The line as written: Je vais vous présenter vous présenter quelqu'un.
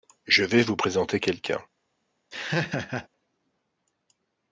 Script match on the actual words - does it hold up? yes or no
no